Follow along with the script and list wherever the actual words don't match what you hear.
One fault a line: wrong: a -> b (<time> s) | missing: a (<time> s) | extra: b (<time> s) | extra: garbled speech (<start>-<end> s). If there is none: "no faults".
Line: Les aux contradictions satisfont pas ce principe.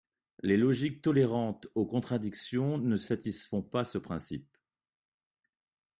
extra: logiques tolérantes (0.6 s)
extra: ne (2.8 s)